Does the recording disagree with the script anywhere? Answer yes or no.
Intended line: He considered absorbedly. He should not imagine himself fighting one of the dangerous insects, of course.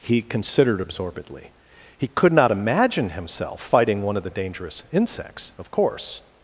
yes